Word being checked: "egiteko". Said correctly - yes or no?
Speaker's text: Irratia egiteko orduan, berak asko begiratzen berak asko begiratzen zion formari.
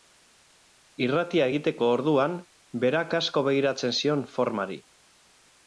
yes